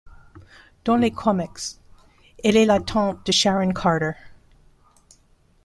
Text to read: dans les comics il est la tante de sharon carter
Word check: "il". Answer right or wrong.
wrong